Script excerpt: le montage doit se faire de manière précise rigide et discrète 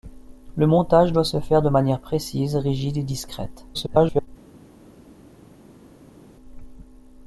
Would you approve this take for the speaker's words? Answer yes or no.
no